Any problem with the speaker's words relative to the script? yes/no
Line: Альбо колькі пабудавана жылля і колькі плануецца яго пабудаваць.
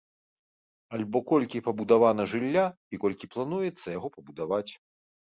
no